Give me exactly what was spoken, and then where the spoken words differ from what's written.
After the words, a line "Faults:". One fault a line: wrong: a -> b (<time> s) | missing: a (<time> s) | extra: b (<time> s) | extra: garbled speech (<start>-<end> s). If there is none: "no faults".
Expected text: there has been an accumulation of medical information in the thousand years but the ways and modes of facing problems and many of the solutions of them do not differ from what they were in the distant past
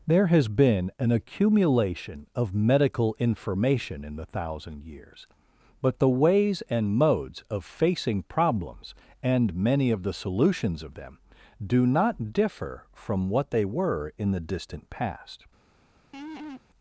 there has been an accumulation of medical information in the thousand years but the ways and modes of facing problems and many of the solutions of them do not differ from what they were in the distant past
Faults:
no faults